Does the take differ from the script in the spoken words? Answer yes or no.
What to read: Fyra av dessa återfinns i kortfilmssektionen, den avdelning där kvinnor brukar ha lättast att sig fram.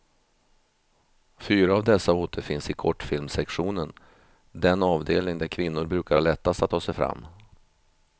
yes